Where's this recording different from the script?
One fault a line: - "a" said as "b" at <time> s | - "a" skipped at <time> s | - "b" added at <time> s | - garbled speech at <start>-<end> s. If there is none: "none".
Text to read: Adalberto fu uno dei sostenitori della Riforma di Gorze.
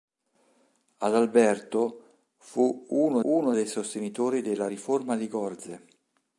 - "uno" added at 3.2 s